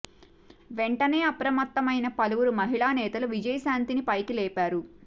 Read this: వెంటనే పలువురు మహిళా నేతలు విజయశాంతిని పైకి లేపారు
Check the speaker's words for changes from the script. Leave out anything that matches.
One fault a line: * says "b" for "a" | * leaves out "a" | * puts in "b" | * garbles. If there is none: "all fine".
* puts in "అప్రమత్తమైన"